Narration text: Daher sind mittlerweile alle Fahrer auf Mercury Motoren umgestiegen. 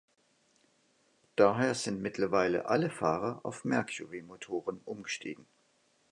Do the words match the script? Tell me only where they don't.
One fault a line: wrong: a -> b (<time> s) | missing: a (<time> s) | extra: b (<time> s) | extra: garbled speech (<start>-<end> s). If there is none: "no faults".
no faults